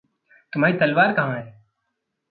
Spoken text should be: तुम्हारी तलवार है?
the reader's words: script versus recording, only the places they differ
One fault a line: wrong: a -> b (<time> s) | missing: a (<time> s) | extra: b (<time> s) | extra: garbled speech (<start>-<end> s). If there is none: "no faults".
extra: कहाँ (1.1 s)